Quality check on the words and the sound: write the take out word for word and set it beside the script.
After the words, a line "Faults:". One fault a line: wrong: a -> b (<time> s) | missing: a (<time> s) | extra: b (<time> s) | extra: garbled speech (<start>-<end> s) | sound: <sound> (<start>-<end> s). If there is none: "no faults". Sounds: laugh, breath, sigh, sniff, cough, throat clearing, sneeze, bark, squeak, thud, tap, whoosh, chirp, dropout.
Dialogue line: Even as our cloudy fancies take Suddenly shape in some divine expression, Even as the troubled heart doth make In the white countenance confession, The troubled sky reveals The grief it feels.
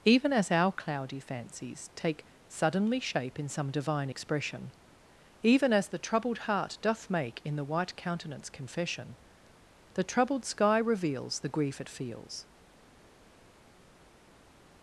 Even as our cloudy fancies take Suddenly shape in some divine expression, Even as the troubled heart doth make In the white countenance confession, The troubled sky reveals The grief it feels.
Faults:
no faults